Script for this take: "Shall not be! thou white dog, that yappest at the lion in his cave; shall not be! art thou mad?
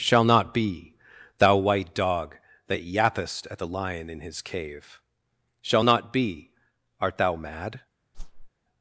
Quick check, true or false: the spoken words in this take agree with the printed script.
true